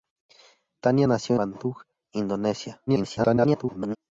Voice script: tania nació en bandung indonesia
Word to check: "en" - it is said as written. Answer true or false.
false